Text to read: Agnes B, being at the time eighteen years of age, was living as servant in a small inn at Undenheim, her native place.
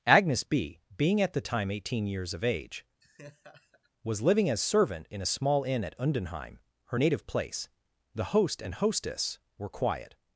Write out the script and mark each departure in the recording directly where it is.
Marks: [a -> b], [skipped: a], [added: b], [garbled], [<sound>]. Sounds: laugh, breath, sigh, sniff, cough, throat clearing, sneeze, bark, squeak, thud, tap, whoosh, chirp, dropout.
Agnes B, being at the time eighteen years of age, [laugh] was living as servant in a small inn at Undenheim, her native place. [added: The host and hostess were quiet]